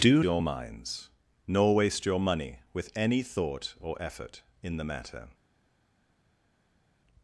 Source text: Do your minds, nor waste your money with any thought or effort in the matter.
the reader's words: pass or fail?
pass